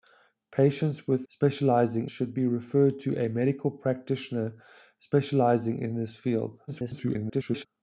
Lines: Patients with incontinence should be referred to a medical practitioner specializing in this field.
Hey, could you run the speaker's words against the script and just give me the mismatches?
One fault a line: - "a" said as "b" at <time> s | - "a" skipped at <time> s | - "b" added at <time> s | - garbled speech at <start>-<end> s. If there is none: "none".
- "incontinence" said as "specializing" at 1.3 s
- garbled speech at 6.7-7.7 s